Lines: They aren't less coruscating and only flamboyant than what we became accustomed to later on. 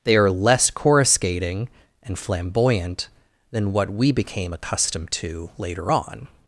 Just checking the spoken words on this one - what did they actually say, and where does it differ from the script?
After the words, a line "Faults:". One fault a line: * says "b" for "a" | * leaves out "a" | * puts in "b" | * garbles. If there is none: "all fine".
They are less coruscating and flamboyant than what we became accustomed to later on.
Faults:
* says "are" for "aren't"
* leaves out "only"